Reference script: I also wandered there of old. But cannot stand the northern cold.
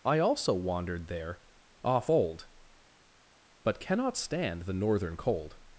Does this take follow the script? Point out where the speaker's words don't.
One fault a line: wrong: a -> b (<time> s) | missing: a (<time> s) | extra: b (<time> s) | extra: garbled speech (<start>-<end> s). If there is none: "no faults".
wrong: of -> off (1.8 s)